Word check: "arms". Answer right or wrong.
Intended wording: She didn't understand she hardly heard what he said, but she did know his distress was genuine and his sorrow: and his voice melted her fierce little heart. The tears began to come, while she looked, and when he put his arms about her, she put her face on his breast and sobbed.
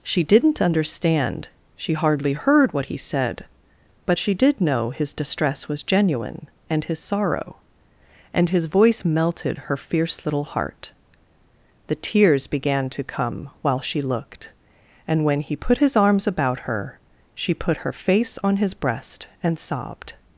right